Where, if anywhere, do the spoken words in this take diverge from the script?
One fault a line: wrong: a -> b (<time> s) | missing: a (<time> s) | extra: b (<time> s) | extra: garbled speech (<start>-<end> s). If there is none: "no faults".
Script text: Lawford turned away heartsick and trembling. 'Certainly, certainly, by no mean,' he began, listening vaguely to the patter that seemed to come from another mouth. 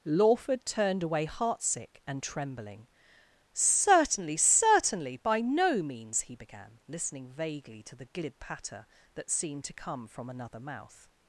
wrong: mean -> means (5.8 s)
extra: glib (8.1 s)